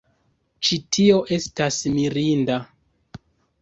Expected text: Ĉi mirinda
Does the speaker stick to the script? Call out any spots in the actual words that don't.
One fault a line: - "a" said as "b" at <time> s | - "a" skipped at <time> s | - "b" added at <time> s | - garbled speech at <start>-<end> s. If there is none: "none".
- "tio estas" added at 1.0 s